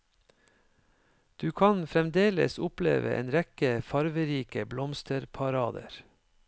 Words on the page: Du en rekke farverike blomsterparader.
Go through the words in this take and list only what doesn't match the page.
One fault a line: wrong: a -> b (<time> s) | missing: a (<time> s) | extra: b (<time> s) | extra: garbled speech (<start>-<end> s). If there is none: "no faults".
extra: kan fremdeles oppleve (1.5 s)